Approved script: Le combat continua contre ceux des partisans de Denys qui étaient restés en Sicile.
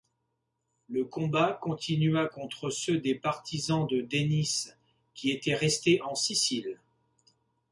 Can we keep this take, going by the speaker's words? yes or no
yes